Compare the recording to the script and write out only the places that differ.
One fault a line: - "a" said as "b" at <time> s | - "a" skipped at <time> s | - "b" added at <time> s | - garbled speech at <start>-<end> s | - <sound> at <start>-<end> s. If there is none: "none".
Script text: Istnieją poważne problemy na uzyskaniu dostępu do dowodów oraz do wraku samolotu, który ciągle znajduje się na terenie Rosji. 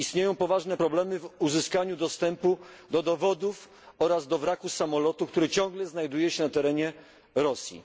- "na" said as "w" at 1.2 s